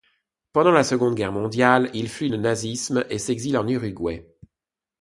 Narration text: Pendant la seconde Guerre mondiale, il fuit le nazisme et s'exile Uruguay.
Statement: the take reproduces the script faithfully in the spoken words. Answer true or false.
false